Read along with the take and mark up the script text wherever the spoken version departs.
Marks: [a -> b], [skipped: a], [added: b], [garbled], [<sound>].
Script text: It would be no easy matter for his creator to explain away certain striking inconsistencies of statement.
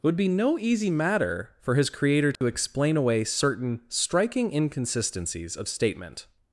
It would be no easy matter for his creator to [dropout] explain away certain striking inconsistencies of statement.